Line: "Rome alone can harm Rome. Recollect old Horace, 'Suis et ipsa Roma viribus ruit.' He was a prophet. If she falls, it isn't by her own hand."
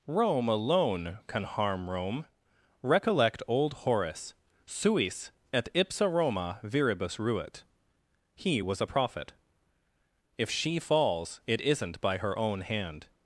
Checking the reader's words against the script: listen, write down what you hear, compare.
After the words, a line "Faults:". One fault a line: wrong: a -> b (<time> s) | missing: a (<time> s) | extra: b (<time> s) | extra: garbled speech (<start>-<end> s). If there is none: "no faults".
"Rome alone can harm Rome. Recollect old Horace, 'Suis et ipsa Roma viribus ruit.' He was a prophet. If she falls, it isn't by her own hand."
Faults:
no faults